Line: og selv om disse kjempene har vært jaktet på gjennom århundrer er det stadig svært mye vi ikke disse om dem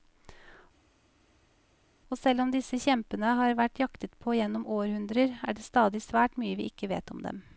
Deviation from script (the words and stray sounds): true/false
true